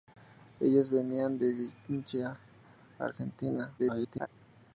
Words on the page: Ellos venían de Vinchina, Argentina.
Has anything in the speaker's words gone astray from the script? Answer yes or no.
yes